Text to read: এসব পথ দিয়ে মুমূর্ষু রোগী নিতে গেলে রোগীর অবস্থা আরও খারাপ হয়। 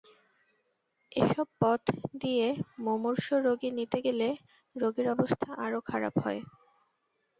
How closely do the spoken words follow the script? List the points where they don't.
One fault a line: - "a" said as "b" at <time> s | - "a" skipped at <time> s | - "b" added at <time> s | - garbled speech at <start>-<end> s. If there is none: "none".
none